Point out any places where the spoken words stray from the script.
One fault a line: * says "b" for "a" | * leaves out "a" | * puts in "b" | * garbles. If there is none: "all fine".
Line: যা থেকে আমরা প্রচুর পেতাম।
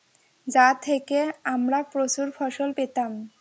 * puts in "ফসল"